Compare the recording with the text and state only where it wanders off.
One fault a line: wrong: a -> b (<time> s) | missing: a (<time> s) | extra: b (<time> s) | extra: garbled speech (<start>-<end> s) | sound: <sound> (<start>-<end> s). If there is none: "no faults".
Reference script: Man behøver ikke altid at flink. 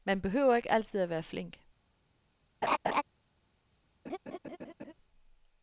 extra: være (1.1 s)
sound: laugh (2.6-3.0 s)
sound: laugh (4.1-4.9 s)